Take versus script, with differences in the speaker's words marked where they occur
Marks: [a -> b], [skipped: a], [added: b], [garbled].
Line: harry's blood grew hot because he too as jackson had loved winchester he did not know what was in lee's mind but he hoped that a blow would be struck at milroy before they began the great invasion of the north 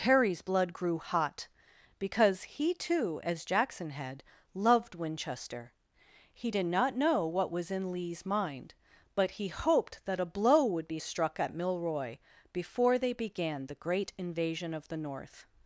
harry's blood grew hot because he too as jackson had loved winchester he did not know what was in lee's mind but he hoped that a blow would be struck at milroy before they began the great invasion of the north